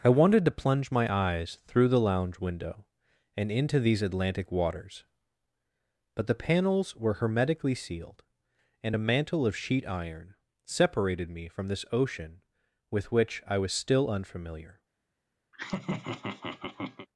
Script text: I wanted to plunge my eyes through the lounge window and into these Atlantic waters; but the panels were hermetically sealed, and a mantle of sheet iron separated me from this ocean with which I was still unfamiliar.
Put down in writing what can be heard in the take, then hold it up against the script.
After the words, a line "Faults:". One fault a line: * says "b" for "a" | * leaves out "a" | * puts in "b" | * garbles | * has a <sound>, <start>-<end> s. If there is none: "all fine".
I wanted to plunge my eyes through the lounge window and into these Atlantic waters; but the panels were hermetically sealed, and a mantle of sheet iron separated me from this ocean with which I was still unfamiliar.
Faults:
* has a laugh, 15.5-17.1 s